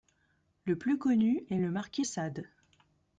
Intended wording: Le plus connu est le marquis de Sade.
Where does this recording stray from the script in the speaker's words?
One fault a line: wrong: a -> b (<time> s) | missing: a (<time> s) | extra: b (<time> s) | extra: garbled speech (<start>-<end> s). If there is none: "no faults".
missing: de (2.1 s)